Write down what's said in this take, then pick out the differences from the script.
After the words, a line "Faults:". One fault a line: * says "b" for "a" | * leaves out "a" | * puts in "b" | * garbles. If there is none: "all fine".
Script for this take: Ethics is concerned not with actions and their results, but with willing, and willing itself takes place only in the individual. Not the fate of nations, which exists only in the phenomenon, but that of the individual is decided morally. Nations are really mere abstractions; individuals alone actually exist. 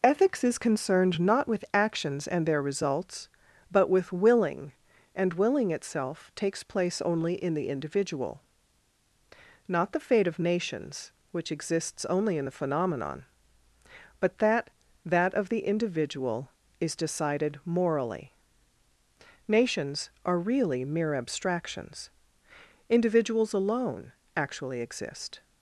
Ethics is concerned not with actions and their results, but with willing, and willing itself takes place only in the individual. Not the fate of nations, which exists only in the phenomenon, but that that of the individual is decided morally. Nations are really mere abstractions; individuals alone actually exist.
Faults:
* puts in "that"